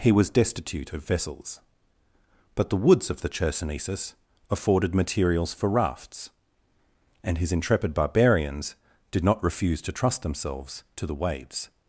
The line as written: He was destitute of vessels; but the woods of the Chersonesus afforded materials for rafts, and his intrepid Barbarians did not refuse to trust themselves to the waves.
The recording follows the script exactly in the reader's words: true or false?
true